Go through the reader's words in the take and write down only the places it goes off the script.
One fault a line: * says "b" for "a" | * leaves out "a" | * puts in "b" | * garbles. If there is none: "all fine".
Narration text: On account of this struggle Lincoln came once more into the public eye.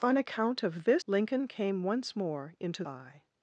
* leaves out "struggle"
* leaves out "the public"